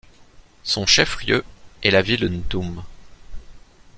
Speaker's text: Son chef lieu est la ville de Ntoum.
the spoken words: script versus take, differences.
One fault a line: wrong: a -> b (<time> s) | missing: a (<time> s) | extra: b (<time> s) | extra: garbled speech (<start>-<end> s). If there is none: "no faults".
missing: de (2.3 s)